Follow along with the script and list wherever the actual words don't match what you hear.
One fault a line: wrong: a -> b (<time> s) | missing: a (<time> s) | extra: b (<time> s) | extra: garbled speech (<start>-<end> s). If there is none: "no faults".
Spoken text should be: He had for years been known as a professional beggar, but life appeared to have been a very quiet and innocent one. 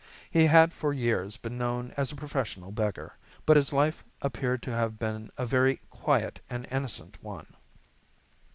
extra: his (3.6 s)